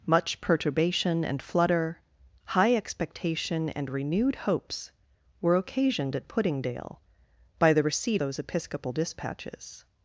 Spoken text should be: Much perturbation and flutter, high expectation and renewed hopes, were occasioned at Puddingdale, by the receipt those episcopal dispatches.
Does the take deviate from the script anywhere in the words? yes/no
no